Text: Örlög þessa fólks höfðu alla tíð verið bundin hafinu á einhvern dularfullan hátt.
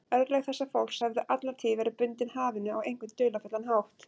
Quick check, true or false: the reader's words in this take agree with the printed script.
true